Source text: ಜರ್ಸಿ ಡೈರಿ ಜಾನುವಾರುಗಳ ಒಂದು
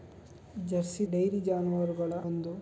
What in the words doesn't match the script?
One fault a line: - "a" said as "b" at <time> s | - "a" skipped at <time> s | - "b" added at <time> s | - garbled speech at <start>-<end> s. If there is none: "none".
none